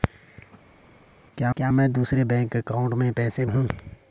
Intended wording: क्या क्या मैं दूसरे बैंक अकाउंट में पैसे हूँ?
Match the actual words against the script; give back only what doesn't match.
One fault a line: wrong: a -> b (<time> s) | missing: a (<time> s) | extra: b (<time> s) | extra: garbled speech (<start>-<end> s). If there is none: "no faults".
no faults